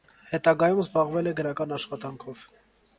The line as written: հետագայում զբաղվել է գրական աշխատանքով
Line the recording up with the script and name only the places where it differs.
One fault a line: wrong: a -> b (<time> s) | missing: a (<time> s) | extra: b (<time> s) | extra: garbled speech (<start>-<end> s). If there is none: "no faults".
no faults